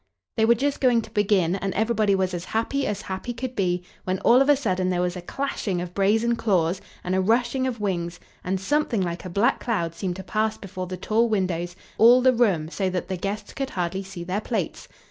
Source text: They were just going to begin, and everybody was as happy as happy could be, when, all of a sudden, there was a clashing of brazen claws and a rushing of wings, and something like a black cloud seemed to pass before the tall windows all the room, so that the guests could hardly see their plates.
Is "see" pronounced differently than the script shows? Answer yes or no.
no